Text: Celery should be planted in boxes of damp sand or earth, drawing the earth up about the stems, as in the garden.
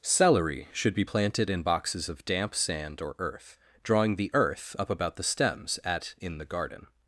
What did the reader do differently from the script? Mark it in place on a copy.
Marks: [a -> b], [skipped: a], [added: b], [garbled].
Celery should be planted in boxes of damp sand or earth, drawing the earth up about the stems, [as -> at] in the garden.